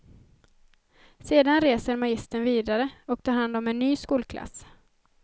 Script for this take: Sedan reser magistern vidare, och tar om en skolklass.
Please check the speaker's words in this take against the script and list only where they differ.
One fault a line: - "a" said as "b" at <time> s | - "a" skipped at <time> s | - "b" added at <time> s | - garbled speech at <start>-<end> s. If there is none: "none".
- "hand" added at 3.3 s
- "ny" added at 3.8 s